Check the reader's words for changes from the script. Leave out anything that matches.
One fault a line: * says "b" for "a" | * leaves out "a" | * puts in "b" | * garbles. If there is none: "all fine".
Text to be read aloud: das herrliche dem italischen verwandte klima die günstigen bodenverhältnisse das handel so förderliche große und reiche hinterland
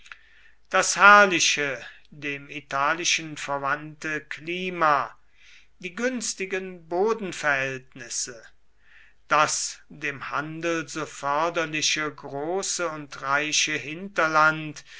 * puts in "dem"